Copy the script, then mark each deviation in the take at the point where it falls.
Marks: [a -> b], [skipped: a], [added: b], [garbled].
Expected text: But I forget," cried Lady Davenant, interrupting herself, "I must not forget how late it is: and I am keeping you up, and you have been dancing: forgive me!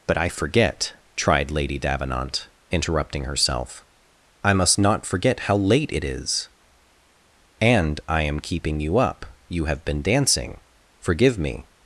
But I forget," [cried -> tried] Lady Davenant, interrupting herself, "I must not forget how late it is: and I am keeping you up, [skipped: and] you have been dancing: forgive me!